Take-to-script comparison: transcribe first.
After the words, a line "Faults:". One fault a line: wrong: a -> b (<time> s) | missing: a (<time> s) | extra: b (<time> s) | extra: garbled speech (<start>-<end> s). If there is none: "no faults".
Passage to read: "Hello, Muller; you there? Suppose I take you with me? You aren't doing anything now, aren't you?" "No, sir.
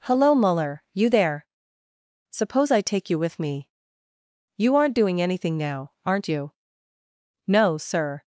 "Hello, Muller; you there? Suppose I take you with me? You aren't doing anything now, aren't you?" "No, sir.
Faults:
no faults